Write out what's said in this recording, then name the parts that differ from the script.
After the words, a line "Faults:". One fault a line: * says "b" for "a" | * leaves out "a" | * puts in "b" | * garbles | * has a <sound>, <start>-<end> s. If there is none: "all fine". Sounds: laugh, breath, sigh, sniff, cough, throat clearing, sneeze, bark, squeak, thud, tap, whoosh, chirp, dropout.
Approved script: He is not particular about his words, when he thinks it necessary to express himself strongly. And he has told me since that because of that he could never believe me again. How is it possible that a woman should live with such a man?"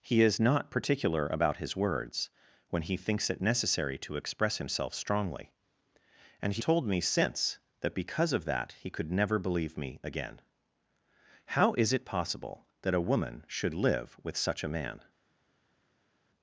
He is not particular about his words, when he thinks it necessary to express himself strongly. And he told me since that because of that he could never believe me again. How is it possible that a woman should live with such a man?"
Faults:
* leaves out "has"